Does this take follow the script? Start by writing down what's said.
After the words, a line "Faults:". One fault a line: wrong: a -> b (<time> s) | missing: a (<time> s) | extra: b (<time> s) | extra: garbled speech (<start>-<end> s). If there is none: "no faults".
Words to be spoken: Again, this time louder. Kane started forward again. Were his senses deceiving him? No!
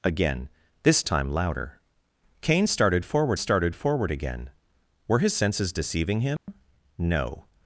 Again, this time louder. Kane started forward started forward again. Were his senses deceiving him? No!
Faults:
extra: started forward (3.3 s)